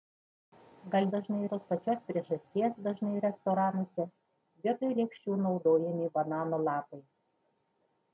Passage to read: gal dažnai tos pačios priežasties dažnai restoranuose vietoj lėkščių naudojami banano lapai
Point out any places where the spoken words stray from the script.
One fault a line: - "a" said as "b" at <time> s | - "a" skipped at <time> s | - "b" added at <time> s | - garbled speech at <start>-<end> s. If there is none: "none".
none